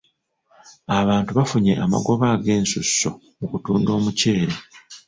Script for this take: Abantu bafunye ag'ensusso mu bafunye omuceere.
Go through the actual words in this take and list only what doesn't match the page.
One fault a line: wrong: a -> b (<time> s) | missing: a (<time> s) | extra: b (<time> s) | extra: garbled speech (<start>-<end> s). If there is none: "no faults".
extra: amagoba (1.8 s)
wrong: bafunye -> kutunda (3.5 s)